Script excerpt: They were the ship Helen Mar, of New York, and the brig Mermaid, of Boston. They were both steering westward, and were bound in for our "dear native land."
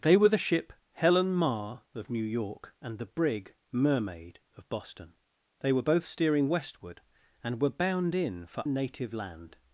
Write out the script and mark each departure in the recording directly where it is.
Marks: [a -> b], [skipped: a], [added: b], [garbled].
They were the ship Helen Mar, of New York, and the brig Mermaid, of Boston. They were both steering westward, and were bound in for [skipped: our "dear] native land."